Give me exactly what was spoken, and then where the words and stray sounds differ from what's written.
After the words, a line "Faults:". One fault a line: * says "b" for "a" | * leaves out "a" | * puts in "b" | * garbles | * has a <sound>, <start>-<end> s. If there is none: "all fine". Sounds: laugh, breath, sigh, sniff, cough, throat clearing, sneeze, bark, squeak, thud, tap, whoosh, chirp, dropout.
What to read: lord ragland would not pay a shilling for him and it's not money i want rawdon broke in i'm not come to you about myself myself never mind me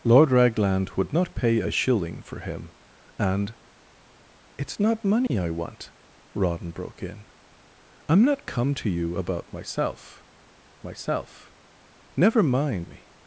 lord ragland would not pay a shilling for him and it's not money i want rawdon broke in i'm not come to you about myself myself never mind me
Faults:
* has a dropout, 5.3-5.3 s